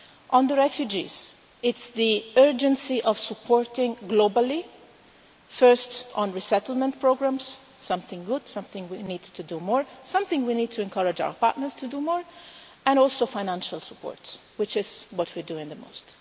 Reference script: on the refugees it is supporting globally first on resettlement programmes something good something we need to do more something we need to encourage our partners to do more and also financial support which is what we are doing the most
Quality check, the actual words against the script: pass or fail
fail